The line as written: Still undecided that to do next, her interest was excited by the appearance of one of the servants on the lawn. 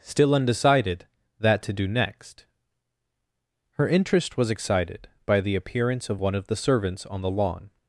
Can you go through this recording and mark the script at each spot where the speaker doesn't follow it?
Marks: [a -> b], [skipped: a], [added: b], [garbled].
Still undecided that to do next, her interest was excited by the appearance of one of the servants on the lawn.